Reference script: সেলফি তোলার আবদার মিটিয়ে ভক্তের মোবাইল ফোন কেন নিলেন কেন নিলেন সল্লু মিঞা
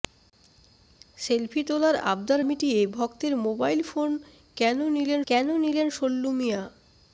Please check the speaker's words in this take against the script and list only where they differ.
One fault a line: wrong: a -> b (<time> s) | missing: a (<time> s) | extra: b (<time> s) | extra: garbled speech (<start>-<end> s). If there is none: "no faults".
no faults